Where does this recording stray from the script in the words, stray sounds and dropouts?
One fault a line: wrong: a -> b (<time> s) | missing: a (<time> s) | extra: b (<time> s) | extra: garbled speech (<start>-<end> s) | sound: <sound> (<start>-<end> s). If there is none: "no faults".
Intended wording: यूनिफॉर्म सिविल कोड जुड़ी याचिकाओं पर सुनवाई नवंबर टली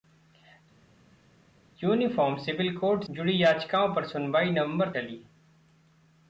no faults